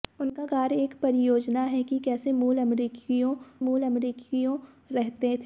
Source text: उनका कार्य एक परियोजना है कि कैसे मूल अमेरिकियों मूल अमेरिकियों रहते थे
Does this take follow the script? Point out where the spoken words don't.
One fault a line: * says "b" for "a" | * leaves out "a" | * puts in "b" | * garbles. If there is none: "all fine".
all fine